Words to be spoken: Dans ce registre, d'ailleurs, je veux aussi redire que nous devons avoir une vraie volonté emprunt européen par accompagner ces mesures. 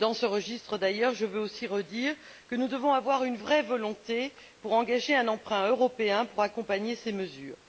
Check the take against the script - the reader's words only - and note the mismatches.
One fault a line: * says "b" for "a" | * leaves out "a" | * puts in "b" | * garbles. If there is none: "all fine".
* puts in "pour engager un"
* says "pour" for "par"